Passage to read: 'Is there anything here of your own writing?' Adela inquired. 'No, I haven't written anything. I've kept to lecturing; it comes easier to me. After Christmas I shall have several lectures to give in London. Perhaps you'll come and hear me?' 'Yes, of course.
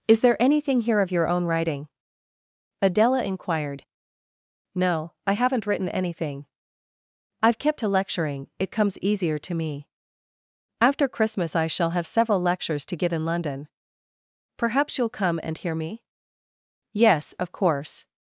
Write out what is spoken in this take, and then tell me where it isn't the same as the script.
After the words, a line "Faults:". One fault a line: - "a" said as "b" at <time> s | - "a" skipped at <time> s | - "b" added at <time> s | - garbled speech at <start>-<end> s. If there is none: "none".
'Is there anything here of your own writing?' Adela inquired. 'No, I haven't written anything. I've kept to lecturing; it comes easier to me. After Christmas I shall have several lectures to give in London. Perhaps you'll come and hear me?' 'Yes, of course.
Faults:
none